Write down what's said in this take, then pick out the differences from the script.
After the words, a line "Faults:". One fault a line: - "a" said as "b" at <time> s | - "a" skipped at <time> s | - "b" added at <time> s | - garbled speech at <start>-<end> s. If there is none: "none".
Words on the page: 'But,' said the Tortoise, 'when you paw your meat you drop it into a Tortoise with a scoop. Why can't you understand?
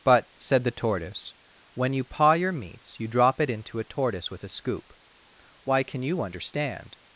'But,' said the Tortoise, 'when you paw your meats you drop it into a Tortoise with a scoop. Why can you understand?
Faults:
- "meat" said as "meats" at 2.5 s
- "can't" said as "can" at 5.8 s